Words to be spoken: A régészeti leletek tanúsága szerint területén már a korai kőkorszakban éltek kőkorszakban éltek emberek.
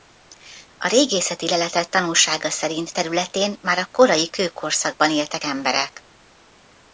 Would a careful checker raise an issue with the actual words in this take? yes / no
yes